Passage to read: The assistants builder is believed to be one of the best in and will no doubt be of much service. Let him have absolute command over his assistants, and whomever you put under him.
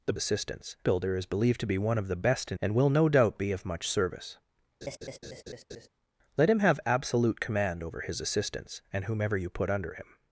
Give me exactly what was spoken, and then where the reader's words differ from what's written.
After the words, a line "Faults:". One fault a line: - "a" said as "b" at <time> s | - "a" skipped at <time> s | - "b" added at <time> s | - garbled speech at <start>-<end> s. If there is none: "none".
The assistants builder is believed to be one of the best in and will no doubt be of much service. Let him have absolute command over his assistants, and whomever you put under him.
Faults:
none